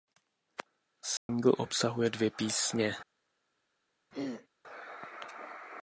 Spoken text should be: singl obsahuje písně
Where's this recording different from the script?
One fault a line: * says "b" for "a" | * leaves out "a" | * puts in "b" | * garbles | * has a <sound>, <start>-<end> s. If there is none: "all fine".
* has a dropout, 1.2-1.3 s
* puts in "dvě"
* has a throat clearing, 4.1-4.5 s